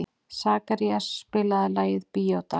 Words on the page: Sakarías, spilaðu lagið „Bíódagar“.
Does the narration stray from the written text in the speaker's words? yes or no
no